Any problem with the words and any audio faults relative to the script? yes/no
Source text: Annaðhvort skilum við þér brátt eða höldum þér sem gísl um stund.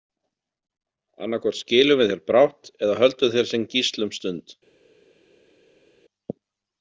no